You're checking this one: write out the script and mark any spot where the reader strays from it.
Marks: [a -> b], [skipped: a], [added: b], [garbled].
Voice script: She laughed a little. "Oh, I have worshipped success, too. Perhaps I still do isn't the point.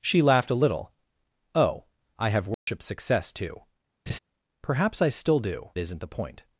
She laughed a little. "Oh, I have worshipped success, too. Perhaps I still do isn't the point.